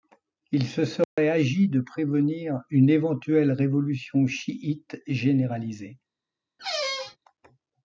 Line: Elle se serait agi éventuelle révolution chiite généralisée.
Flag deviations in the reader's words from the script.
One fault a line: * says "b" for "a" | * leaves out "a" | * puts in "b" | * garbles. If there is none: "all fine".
* says "Il" for "Elle"
* puts in "de prévenir une"